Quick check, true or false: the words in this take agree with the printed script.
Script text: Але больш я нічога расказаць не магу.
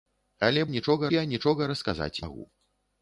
false